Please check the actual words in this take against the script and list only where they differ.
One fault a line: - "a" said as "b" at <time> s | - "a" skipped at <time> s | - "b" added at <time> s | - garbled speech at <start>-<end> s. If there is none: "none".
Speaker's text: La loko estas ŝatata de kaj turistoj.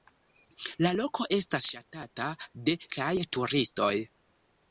none